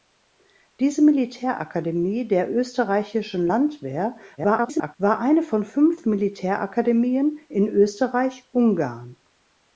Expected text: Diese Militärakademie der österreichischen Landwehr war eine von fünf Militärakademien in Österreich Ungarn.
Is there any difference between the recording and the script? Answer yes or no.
yes